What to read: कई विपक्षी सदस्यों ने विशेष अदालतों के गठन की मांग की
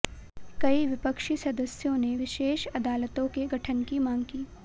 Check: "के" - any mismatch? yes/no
no